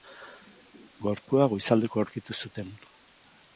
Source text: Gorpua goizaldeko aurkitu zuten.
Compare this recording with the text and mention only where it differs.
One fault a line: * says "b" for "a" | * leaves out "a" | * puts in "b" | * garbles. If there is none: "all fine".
all fine